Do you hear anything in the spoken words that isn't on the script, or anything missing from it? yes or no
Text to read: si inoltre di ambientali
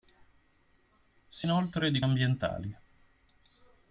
no